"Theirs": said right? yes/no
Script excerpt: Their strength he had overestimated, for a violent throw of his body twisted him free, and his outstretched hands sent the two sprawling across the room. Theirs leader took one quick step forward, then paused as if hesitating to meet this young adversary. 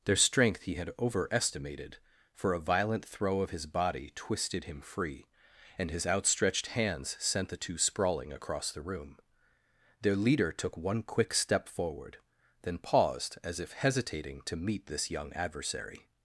no